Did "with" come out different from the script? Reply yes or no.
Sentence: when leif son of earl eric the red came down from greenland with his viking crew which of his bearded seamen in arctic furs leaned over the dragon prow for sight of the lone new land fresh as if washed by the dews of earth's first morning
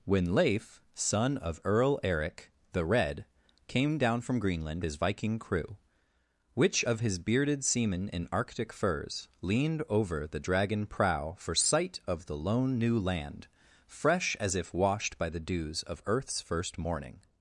yes